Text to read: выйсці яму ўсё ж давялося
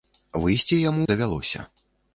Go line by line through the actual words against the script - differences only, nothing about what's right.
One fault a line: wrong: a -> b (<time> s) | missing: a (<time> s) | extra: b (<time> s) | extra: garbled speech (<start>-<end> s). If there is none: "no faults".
missing: ўсё (1.0 s)